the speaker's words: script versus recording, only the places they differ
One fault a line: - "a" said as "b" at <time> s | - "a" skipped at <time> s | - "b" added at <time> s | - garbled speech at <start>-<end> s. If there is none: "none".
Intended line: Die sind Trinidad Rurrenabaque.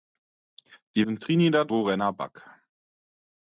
none